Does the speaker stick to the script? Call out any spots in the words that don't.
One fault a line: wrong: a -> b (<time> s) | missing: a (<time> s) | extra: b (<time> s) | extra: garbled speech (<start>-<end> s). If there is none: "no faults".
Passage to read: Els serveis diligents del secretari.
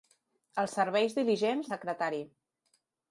missing: del (1.7 s)